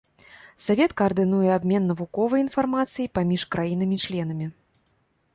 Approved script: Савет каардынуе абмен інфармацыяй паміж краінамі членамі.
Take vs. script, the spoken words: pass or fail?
fail